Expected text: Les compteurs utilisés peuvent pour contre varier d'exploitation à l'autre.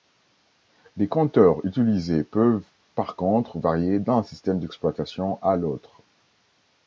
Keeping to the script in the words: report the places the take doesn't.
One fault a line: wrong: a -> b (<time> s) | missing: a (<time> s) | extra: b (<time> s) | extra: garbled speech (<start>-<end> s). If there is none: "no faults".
wrong: pour -> par (3.0 s)
extra: d'un système (4.0 s)